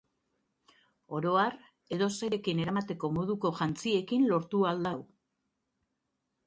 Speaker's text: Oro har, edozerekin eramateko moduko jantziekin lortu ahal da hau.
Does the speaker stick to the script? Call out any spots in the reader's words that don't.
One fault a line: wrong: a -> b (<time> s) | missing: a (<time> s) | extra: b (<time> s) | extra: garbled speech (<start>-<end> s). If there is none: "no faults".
no faults